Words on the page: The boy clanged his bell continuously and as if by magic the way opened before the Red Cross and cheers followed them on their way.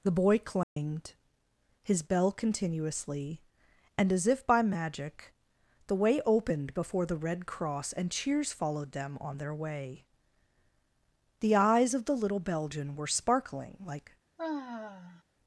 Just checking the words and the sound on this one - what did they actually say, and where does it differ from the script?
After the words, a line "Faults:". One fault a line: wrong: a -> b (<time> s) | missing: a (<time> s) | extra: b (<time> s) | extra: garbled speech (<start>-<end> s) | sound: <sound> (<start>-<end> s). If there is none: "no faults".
The boy clanged his bell continuously and as if by magic the way opened before the Red Cross and cheers followed them on their way. The eyes of the little Belgian were sparkling like
Faults:
sound: dropout (0.6-0.8 s)
extra: The eyes of the little Belgian were sparkling like (11.4 s)
sound: sigh (14.4-15.2 s)